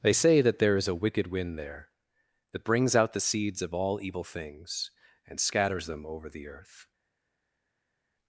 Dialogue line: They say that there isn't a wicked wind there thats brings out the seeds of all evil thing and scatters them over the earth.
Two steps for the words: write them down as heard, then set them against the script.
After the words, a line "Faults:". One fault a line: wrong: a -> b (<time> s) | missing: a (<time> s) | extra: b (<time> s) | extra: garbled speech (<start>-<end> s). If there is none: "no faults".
They say that there is a wicked wind there that brings out the seeds of all evil things and scatters them over the earth.
Faults:
wrong: isn't -> is (0.8 s)
wrong: thats -> that (2.5 s)
wrong: thing -> things (4.2 s)